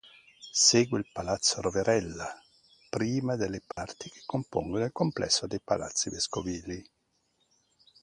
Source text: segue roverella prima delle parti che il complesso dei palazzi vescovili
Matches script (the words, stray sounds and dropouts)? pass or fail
fail